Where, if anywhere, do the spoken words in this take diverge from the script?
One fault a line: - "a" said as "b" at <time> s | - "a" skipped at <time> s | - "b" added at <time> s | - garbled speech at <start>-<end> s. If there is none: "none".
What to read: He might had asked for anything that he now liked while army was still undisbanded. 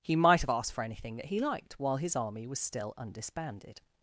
- "had" said as "have" at 0.4 s
- "now" skipped at 1.4 s
- "his" added at 2.0 s